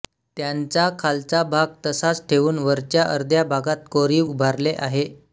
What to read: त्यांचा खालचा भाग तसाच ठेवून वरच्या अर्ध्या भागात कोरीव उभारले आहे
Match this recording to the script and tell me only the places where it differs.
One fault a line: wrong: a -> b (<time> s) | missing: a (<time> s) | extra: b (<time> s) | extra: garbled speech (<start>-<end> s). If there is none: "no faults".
no faults